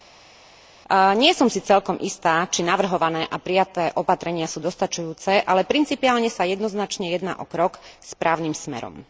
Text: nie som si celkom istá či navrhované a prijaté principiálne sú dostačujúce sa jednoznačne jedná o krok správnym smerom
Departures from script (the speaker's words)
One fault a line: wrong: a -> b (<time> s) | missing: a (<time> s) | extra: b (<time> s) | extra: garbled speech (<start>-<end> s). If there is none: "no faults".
wrong: principiálne -> opatrenia (4.0 s)
extra: ale principiálne (5.4 s)